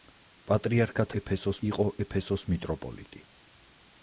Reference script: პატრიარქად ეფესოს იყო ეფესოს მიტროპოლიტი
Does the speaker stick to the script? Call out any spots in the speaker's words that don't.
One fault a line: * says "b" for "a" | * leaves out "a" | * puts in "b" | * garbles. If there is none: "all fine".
all fine